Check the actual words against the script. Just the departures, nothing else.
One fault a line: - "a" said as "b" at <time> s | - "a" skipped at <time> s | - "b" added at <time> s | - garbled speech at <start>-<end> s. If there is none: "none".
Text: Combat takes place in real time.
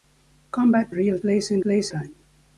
- "takes" said as "real" at 0.9 s
- "real" said as "place" at 1.6 s